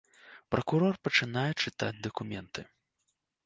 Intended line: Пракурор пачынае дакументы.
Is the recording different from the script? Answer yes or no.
yes